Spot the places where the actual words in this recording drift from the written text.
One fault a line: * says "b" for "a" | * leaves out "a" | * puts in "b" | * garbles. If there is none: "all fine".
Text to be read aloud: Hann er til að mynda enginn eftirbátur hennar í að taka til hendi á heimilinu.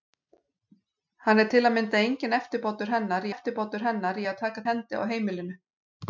* puts in "eftirbátur hennar"
* leaves out "til"